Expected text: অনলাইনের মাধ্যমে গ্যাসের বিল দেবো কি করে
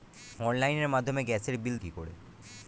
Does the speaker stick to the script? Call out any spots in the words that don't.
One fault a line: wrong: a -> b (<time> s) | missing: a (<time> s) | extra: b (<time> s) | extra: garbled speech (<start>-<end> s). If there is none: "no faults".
missing: দেবো (1.8 s)